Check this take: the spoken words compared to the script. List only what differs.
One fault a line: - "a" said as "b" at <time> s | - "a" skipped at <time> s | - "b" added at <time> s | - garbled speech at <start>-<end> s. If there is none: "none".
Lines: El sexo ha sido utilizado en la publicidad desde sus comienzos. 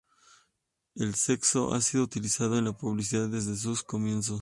none